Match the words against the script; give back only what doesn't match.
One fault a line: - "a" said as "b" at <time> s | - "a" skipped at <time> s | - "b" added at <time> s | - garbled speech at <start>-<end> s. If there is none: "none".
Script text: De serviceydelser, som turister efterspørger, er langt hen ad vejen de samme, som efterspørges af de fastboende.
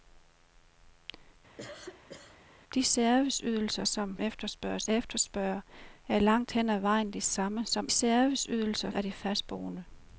- "turister" said as "efterspørges" at 4.2 s
- "efterspørges" said as "serviceydelser" at 7.9 s